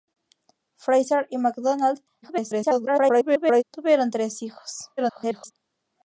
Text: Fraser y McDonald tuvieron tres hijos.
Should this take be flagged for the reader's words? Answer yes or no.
yes